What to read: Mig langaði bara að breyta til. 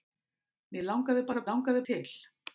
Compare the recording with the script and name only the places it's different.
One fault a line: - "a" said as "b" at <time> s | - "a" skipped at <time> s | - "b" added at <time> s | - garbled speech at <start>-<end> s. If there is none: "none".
- "breyta" said as "langaði" at 1.5 s